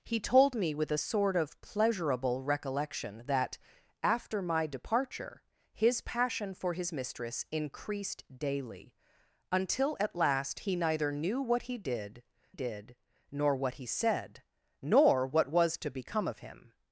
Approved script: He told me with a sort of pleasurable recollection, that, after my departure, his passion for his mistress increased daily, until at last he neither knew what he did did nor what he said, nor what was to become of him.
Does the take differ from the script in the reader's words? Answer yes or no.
no